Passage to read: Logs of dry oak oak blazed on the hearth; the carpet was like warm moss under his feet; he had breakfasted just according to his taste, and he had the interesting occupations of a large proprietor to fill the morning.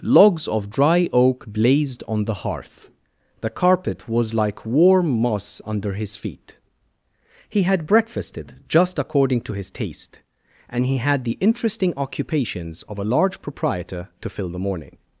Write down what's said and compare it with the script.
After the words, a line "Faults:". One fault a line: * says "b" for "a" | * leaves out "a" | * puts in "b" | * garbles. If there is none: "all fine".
Logs of dry oak blazed on the hearth; the carpet was like warm moss under his feet; he had breakfasted just according to his taste, and he had the interesting occupations of a large proprietor to fill the morning.
Faults:
* leaves out "oak"